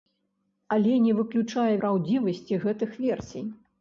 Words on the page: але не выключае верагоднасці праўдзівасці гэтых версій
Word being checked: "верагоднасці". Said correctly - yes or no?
no